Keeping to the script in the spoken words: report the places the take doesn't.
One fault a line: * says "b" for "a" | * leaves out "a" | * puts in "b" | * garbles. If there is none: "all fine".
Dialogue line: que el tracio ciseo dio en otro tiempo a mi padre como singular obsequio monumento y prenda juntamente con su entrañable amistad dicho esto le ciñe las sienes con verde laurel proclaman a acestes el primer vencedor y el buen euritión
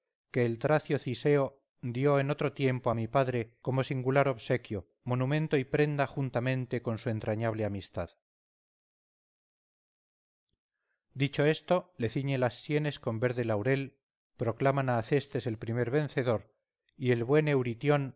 all fine